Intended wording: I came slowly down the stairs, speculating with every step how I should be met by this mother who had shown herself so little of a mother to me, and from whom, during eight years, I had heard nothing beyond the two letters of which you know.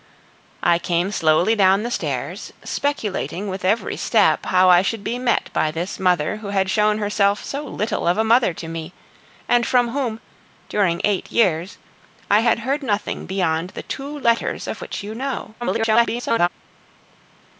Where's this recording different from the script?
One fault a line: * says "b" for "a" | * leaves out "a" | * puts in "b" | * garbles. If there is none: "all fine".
* garbles